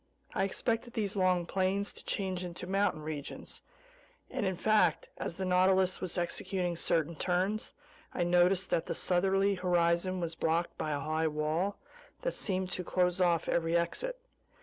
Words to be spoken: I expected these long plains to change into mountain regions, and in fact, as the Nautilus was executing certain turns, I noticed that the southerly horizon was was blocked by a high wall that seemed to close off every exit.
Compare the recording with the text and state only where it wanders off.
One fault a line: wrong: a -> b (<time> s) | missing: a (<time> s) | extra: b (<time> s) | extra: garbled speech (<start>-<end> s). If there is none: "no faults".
missing: was (10.3 s)